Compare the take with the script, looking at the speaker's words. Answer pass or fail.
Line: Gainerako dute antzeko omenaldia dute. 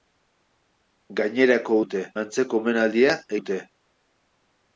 pass